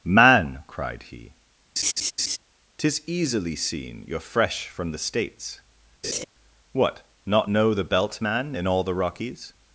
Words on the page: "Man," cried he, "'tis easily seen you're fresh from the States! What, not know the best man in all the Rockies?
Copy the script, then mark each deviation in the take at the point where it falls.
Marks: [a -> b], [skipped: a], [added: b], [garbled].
"Man," cried he, "'tis easily seen you're fresh from the States! What, not know the [best -> belt] man in all the Rockies?